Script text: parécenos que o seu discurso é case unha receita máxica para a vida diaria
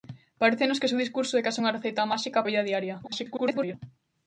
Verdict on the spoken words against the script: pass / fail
fail